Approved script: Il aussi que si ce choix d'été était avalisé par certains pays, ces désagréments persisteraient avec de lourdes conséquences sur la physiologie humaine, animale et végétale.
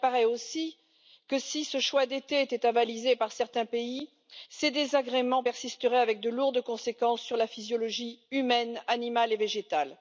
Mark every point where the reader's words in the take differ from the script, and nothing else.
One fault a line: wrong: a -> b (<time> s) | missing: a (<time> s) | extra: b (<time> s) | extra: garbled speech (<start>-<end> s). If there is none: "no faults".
extra: apparaît (0.1 s)